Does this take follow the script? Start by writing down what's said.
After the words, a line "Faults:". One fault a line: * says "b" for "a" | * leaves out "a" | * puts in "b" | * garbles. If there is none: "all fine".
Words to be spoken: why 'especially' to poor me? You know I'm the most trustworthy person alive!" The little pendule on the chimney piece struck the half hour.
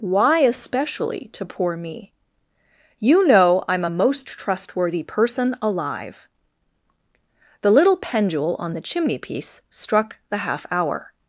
why 'especially' to poor me? You know I'm a most trustworthy person alive!" The little pendule on the chimney piece struck the half hour.
Faults:
* says "a" for "the"